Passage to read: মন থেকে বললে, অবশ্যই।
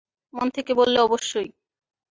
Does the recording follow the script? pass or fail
pass